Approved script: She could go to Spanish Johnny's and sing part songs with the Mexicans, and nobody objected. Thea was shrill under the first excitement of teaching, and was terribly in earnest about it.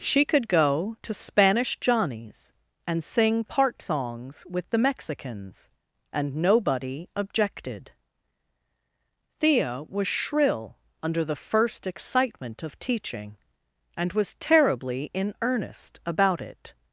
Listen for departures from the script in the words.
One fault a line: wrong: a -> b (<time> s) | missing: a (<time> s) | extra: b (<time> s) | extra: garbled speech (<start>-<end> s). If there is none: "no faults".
no faults